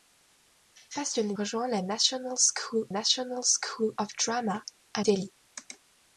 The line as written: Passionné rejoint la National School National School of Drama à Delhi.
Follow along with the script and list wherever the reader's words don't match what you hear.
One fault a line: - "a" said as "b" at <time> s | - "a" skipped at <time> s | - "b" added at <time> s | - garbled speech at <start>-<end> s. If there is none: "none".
none